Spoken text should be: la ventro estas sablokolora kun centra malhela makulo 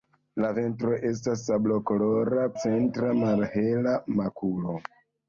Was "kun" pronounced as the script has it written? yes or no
no